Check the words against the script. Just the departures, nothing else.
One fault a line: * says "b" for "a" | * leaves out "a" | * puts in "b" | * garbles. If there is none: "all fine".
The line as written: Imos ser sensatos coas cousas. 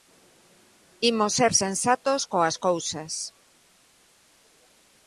all fine